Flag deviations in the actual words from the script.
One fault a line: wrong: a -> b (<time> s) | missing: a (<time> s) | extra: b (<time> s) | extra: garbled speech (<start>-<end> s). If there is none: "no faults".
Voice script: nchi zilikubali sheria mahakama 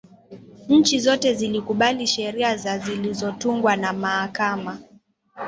extra: zote (1.0 s)
extra: za zilizotungwa na (2.5 s)